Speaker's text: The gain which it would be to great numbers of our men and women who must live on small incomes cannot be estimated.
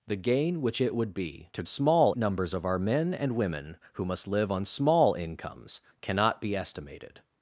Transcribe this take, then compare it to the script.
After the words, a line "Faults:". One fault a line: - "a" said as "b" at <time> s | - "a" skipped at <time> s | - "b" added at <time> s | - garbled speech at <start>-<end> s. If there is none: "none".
The gain which it would be to small numbers of our men and women who must live on small incomes cannot be estimated.
Faults:
- "great" said as "small" at 1.7 s